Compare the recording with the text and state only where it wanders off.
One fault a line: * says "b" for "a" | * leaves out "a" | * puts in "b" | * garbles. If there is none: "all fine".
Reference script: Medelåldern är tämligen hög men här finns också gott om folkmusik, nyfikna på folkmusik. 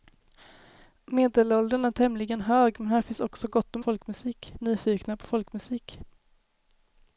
all fine